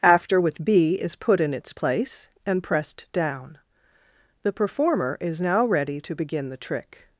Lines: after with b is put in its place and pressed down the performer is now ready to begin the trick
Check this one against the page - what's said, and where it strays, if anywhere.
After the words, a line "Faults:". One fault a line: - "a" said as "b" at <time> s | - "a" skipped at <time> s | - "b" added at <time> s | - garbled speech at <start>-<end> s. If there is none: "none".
after with b is put in its place and pressed down the performer is now ready to begin the trick
Faults:
none